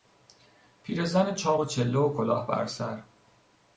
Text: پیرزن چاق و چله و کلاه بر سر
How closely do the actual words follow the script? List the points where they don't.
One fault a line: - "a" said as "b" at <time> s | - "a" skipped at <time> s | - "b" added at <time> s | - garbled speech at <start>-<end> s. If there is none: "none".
none